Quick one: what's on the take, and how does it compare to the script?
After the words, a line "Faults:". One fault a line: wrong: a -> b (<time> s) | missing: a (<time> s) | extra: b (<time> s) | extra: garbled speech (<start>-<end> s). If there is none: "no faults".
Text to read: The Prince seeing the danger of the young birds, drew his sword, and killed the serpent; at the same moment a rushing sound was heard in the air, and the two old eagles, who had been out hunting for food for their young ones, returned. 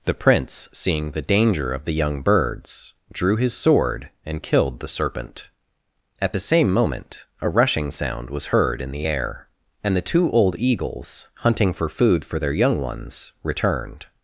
The Prince seeing the danger of the young birds, drew his sword, and killed the serpent; at the same moment a rushing sound was heard in the air, and the two old eagles, hunting for food for their young ones, returned.
Faults:
missing: who had been out (11.3 s)